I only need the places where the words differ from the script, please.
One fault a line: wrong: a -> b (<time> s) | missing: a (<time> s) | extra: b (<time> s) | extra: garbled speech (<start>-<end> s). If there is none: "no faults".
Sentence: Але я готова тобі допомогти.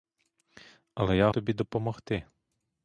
missing: готова (1.3 s)